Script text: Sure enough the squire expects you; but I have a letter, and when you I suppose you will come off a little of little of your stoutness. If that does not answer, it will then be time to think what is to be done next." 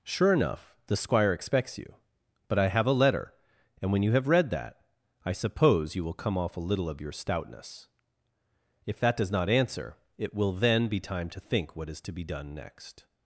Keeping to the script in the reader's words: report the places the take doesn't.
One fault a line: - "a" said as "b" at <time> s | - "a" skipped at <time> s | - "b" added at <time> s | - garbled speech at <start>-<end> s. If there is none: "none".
- "have read that" added at 4.1 s
- "little of" skipped at 7.0 s